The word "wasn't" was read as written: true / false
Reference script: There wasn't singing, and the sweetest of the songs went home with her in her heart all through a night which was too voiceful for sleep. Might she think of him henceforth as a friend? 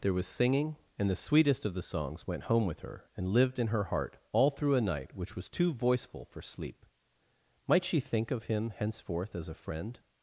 false